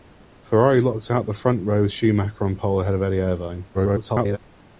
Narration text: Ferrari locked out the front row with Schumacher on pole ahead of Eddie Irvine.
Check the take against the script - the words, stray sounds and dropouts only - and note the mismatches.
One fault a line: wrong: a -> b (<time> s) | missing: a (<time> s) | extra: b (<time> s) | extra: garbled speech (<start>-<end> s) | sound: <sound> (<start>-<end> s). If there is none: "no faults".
extra: garbled speech (3.7-4.4 s)